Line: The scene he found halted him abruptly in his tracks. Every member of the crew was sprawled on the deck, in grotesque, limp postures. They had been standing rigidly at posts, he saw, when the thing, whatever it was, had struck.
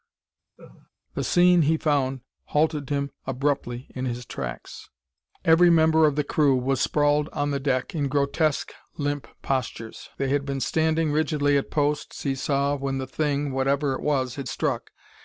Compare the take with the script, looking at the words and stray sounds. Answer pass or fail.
fail